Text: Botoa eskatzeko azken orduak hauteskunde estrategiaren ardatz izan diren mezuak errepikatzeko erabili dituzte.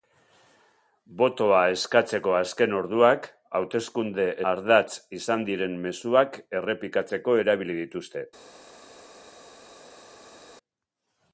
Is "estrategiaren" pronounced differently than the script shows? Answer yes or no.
yes